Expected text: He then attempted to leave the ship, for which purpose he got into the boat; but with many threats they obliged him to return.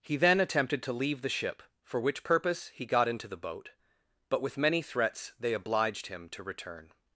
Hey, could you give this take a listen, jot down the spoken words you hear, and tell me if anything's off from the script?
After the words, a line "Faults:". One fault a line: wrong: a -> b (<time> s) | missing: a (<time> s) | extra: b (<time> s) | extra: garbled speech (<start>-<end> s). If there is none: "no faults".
He then attempted to leave the ship, for which purpose he got into the boat; but with many threats they obliged him to return.
Faults:
no faults